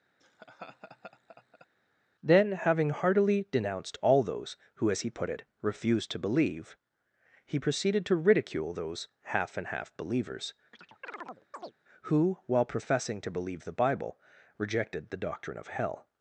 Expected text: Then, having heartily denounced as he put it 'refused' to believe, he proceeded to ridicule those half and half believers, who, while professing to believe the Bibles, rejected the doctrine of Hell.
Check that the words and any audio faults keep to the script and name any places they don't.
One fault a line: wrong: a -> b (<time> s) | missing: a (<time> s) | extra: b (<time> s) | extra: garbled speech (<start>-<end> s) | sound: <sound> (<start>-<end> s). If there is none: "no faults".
sound: laugh (0.2-1.7 s)
extra: all those who (4.0 s)
sound: chirp (10.7-11.7 s)
wrong: Bibles -> Bible (13.7 s)